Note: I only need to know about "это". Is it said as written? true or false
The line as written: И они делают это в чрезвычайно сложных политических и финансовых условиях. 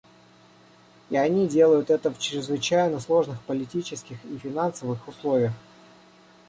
true